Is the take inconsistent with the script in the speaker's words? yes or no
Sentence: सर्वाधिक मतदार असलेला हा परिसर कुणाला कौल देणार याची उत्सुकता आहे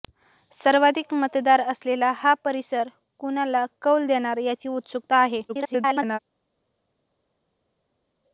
yes